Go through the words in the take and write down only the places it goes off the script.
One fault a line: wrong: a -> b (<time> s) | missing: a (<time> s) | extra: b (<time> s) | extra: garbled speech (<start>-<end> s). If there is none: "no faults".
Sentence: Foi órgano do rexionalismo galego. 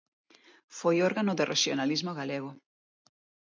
no faults